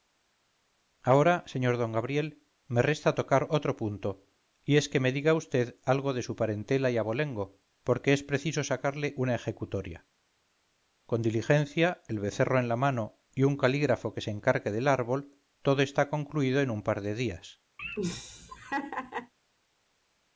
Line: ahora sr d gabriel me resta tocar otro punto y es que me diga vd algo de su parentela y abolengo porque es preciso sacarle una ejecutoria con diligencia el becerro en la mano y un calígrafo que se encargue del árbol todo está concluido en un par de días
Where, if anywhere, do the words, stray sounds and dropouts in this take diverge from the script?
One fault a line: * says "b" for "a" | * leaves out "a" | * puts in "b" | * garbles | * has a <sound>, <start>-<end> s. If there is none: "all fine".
* has a laugh, 17.8-19.3 s